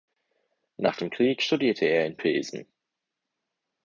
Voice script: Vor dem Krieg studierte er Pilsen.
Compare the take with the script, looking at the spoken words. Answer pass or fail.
fail